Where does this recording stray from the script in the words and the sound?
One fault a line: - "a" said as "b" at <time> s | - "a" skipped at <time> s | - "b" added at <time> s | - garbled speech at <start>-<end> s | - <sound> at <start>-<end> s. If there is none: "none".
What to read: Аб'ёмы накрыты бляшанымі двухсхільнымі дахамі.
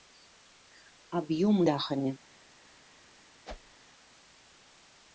- "накрыты бляшанымі двухсхільнымі" skipped at 1.6 s
- whoosh at 3.4-3.8 s